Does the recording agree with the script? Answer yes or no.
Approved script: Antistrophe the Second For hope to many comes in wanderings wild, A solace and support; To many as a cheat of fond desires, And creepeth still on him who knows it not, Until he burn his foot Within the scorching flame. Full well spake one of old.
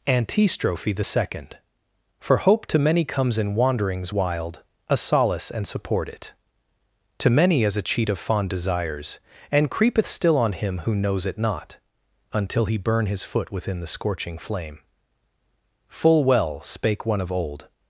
no